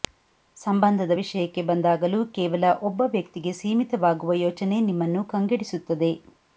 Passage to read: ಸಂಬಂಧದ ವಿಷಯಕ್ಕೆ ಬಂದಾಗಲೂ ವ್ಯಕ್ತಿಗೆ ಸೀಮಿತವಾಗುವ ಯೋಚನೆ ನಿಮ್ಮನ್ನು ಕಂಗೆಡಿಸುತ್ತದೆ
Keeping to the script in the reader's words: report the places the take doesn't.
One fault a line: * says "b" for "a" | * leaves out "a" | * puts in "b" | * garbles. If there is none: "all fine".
* puts in "ಕೇವಲ ಒಬ್ಬ"